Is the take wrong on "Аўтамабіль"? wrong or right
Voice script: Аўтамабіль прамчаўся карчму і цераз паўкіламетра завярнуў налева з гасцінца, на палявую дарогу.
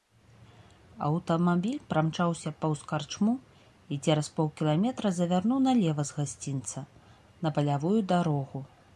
right